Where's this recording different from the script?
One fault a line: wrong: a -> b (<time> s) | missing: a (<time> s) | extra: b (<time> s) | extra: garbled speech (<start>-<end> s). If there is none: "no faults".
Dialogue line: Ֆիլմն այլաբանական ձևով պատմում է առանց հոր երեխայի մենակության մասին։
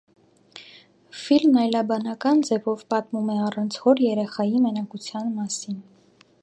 no faults